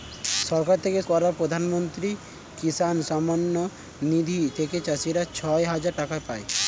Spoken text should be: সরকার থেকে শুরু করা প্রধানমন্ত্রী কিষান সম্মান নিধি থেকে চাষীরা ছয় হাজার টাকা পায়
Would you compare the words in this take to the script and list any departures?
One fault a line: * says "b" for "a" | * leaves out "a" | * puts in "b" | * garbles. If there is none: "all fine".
* leaves out "শুরু"